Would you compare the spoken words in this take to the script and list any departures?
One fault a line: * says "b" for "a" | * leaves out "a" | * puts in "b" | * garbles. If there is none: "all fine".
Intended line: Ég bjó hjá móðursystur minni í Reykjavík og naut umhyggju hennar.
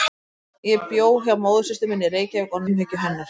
* leaves out "naut"